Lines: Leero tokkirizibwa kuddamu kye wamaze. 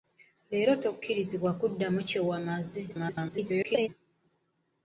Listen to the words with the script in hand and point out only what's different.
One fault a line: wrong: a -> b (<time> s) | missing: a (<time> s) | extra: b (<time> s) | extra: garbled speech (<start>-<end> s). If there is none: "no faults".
extra: garbled speech (2.9-3.9 s)